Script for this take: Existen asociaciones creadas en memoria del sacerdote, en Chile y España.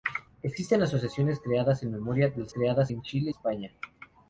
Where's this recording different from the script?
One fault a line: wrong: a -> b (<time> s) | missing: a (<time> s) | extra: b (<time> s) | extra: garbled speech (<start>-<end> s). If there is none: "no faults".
wrong: sacerdote -> creadas (2.5 s)
missing: y (3.3 s)